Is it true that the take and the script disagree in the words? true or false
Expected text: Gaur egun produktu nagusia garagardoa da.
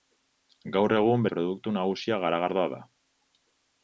false